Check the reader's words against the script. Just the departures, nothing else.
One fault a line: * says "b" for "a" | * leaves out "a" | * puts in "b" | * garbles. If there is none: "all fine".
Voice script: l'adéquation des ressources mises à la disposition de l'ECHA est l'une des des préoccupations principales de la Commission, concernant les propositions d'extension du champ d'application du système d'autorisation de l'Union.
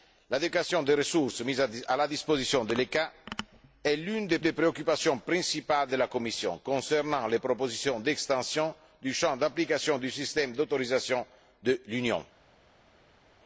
all fine